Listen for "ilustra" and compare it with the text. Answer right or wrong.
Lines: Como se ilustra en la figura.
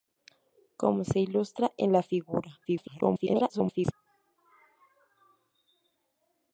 right